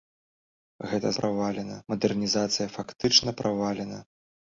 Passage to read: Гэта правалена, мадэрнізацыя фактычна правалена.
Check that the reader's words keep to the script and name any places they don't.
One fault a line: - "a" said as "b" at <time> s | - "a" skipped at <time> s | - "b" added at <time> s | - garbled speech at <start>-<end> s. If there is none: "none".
none